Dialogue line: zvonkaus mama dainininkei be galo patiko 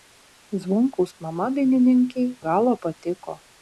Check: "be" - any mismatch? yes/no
yes